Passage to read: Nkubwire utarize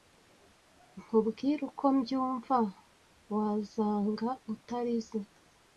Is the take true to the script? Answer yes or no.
no